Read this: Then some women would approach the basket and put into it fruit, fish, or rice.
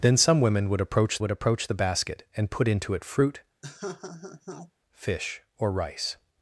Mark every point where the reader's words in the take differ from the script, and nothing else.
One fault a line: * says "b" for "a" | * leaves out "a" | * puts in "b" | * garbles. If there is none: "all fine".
* puts in "would approach"